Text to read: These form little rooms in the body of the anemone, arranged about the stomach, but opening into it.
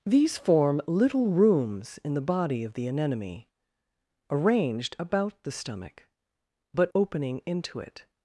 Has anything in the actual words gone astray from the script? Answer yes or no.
no